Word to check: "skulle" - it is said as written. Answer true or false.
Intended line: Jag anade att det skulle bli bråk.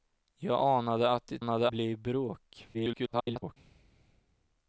false